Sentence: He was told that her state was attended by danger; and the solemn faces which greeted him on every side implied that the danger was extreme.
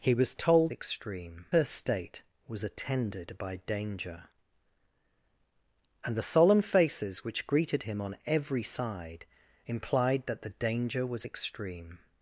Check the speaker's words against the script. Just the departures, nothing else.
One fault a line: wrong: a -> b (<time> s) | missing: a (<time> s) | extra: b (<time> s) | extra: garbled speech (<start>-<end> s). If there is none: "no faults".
wrong: that -> extreme (0.7 s)